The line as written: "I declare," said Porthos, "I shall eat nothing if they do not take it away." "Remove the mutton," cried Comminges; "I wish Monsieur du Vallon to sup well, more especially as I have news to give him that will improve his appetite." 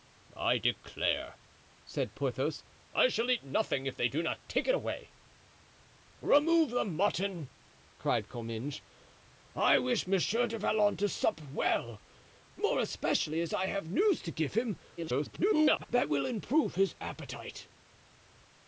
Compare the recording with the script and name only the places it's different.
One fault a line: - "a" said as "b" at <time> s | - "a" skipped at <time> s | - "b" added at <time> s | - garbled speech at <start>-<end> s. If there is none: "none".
- garbled speech at 15.0-15.9 s